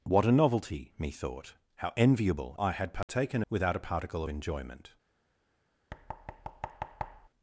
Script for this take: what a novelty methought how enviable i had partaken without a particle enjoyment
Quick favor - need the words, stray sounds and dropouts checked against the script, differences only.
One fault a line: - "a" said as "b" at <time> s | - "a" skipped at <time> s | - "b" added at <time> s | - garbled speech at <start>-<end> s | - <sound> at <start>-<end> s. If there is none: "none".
- dropout at 3.0-3.1 s
- thud at 5.9-7.3 s